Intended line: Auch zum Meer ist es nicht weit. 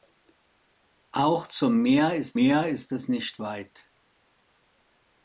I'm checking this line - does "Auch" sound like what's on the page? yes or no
yes